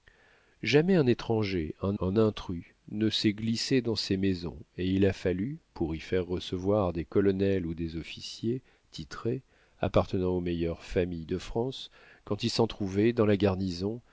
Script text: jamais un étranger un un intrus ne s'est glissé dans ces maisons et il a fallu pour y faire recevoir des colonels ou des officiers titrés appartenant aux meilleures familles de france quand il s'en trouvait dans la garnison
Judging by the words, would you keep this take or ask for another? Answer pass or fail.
pass